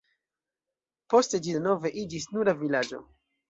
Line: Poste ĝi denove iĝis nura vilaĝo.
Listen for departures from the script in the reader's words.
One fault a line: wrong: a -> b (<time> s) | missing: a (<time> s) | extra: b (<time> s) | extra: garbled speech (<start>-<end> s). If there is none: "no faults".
no faults